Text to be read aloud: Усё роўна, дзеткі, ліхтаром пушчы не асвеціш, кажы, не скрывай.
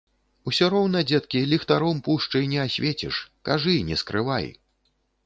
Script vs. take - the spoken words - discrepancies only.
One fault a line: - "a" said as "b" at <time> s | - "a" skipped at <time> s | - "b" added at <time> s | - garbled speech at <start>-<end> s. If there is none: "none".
none